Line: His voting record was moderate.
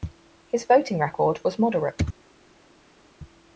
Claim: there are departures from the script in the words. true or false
false